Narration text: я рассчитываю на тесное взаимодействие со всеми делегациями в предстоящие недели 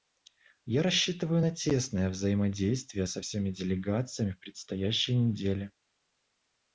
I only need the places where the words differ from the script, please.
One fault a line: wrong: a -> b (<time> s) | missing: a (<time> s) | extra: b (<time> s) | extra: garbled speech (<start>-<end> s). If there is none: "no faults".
no faults